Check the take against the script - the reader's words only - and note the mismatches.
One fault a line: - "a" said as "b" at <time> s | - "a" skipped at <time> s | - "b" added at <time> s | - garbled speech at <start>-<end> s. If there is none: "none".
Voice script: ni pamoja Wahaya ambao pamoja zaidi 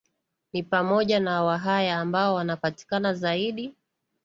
- "na" added at 1.2 s
- "pamoja" said as "wanapatikana" at 2.4 s